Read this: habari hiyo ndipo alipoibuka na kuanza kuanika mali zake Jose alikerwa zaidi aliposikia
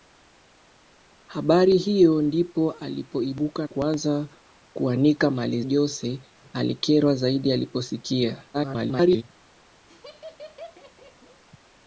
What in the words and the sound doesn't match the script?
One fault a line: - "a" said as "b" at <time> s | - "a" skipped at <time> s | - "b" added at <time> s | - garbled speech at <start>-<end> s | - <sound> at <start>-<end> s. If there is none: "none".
- "na" skipped at 3.7 s
- "zake" skipped at 5.6 s
- garbled speech at 8.5-9.2 s
- laugh at 9.9-11.4 s